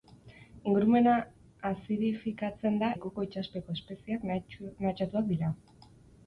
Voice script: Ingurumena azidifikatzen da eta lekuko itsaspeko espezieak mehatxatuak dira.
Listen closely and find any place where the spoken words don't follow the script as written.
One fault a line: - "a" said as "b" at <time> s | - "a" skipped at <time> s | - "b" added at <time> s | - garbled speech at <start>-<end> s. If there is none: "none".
- "eta" skipped at 2.9 s